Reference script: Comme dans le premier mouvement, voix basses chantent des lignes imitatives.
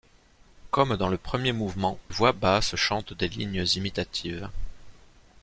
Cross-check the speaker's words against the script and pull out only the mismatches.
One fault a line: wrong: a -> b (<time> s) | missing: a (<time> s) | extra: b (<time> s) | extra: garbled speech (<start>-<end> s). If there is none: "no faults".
no faults